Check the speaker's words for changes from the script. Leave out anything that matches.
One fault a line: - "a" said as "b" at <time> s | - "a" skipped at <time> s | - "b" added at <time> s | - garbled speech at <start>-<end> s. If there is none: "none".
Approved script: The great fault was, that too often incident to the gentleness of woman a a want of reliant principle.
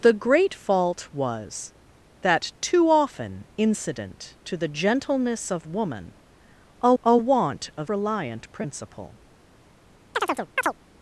none